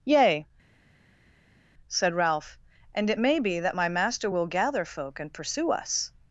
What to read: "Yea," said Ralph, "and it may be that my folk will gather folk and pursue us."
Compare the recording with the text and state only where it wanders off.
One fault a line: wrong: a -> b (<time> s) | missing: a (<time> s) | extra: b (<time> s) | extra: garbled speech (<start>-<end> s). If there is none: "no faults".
wrong: folk -> master (3.9 s)